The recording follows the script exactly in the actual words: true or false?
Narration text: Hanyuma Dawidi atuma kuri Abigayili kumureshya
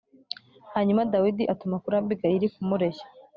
true